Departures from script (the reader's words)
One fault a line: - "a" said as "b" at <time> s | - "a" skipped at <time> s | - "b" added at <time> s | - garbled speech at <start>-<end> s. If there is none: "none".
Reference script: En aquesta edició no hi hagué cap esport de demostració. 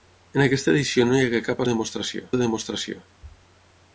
- "esport" said as "demostració" at 1.7 s